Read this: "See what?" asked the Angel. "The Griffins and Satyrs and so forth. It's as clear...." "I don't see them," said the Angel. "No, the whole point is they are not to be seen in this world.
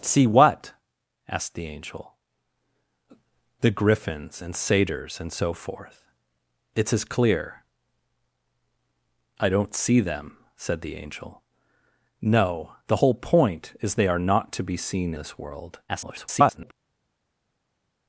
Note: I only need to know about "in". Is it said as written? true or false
false